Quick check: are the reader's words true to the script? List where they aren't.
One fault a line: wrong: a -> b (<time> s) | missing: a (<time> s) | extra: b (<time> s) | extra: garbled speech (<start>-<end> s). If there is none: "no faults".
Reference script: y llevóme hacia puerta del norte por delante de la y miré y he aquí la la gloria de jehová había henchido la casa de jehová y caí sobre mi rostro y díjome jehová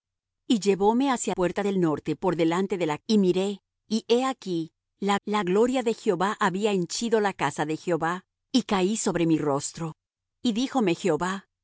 no faults